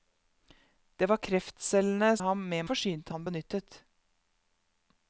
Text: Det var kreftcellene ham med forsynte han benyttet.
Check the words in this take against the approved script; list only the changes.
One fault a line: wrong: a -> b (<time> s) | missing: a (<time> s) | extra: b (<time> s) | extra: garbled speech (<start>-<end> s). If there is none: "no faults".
no faults